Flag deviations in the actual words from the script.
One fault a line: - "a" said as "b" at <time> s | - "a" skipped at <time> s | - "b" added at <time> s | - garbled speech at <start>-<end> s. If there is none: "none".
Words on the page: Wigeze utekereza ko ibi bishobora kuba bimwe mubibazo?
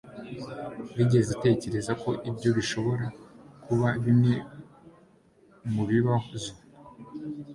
- "ibi" said as "ibyo" at 2.3 s